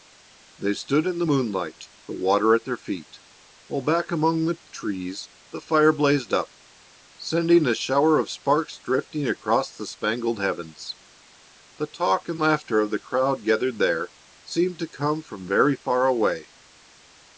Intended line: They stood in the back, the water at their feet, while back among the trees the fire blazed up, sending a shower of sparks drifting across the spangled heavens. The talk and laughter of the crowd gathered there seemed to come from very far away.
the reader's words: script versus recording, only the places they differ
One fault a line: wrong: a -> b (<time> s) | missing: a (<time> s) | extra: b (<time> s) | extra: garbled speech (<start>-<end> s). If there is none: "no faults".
wrong: back -> moonlight (1.3 s)